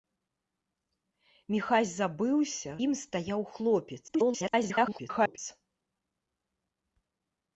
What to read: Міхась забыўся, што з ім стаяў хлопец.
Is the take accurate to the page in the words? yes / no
no